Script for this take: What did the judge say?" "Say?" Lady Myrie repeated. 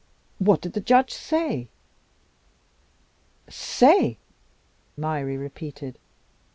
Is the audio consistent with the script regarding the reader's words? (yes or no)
no